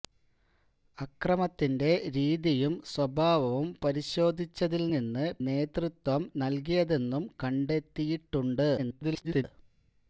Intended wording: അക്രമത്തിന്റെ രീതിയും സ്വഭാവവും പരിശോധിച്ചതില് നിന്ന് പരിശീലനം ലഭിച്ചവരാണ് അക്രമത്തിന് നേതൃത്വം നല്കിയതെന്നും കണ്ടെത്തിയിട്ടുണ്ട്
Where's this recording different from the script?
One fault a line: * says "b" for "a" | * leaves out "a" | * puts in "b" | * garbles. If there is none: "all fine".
* leaves out "പരിശീലനം ലഭിച്ചവരാണ് അക്രമത്തിന്"
* garbles